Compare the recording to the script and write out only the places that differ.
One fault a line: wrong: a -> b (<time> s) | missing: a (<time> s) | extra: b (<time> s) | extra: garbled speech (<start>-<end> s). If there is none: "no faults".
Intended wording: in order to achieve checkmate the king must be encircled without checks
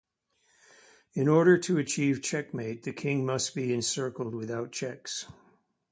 no faults